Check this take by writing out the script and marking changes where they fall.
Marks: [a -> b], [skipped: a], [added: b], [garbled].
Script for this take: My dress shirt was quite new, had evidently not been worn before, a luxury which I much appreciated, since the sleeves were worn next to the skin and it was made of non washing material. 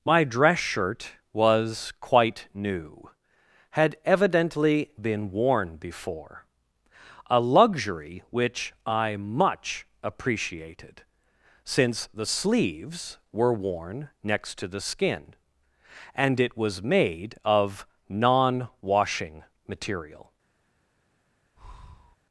My dress shirt was quite new, had evidently [skipped: not] been worn before, a luxury which I much appreciated, since the sleeves were worn next to the skin and it was made of non washing material.